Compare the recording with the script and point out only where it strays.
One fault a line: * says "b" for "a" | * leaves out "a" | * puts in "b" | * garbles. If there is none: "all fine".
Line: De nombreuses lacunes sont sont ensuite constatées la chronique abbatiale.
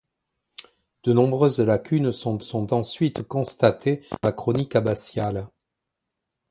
all fine